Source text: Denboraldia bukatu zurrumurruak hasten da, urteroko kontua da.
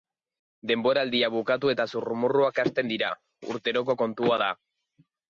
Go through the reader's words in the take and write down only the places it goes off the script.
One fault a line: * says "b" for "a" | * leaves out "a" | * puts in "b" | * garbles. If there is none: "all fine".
* puts in "eta"
* says "dira" for "da"